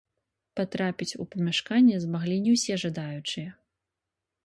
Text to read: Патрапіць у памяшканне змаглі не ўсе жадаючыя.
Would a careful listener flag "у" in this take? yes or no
no